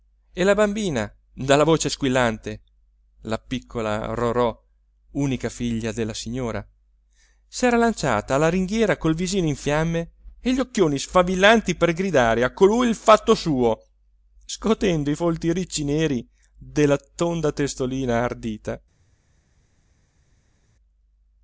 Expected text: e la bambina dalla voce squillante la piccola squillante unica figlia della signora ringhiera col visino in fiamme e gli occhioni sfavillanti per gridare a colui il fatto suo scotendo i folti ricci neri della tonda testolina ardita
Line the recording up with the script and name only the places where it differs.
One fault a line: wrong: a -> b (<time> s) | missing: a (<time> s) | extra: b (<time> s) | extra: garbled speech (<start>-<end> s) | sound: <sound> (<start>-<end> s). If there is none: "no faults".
wrong: squillante -> rorò (4.2 s)
extra: s'era lanciata alla (7.5 s)